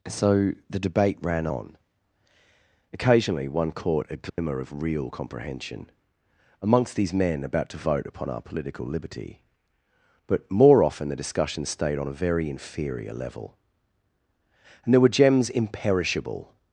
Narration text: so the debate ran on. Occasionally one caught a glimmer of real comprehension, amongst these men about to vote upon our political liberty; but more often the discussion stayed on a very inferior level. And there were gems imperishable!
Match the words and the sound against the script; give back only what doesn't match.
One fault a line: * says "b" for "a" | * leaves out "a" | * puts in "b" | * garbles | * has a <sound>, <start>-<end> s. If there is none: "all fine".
* has a dropout, 4.3-4.4 s